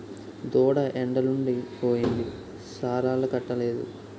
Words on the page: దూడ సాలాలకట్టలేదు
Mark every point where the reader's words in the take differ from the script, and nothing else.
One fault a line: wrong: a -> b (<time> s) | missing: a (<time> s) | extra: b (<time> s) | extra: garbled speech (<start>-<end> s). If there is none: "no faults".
extra: ఎండలుండి పోయింది (0.9 s)